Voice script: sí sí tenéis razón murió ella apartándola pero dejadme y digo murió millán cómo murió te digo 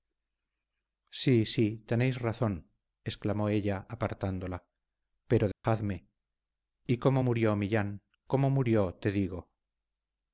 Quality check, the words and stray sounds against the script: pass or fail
fail